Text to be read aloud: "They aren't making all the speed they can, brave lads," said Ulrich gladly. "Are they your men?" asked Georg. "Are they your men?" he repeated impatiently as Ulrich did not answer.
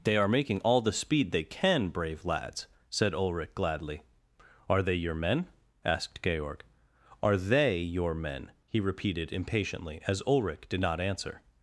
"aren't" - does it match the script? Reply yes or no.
no